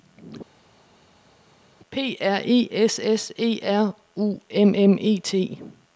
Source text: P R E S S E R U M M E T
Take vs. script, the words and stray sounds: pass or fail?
pass